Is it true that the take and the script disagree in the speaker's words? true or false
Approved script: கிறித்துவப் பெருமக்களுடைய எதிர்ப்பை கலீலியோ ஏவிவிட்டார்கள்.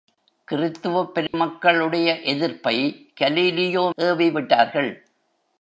false